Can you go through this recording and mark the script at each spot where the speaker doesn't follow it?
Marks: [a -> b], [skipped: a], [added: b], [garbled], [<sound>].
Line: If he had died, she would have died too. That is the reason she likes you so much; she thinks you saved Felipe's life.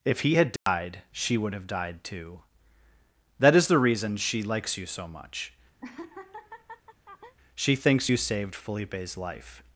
If he had died, [dropout] she would have died too. That is the reason she likes you so much; [laugh] she thinks you saved Felipe's life.